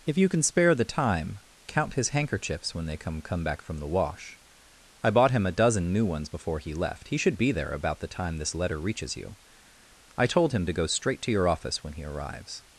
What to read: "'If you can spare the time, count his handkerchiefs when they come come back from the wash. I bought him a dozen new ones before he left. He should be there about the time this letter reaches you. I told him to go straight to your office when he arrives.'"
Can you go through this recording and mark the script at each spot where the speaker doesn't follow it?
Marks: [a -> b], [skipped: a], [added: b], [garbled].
"'If you can spare the time, count his handkerchiefs when they come come back from the wash. I bought him a dozen new ones before he left. He should be there about the time this letter reaches you. I told him to go straight to your office when he arrives.'"